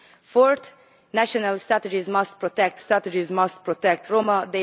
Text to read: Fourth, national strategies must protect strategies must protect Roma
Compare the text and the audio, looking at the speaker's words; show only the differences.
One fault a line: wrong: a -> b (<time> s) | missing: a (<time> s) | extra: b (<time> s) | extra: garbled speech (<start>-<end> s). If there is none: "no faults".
no faults